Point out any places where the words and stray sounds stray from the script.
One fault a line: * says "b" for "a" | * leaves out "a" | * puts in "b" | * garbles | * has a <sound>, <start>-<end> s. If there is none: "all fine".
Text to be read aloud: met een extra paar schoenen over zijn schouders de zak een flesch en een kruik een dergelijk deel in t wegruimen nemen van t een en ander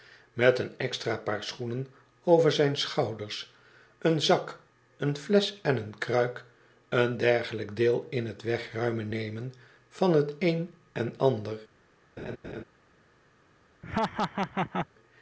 * says "een" for "de"
* has a laugh, 12.2-12.6 s
* has a laugh, 13.8-14.9 s